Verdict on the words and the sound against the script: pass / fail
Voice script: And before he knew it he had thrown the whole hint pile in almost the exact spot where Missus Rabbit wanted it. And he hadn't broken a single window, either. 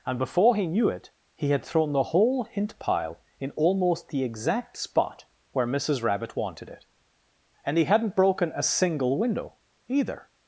pass